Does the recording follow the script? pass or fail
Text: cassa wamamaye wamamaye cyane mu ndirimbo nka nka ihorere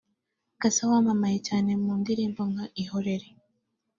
fail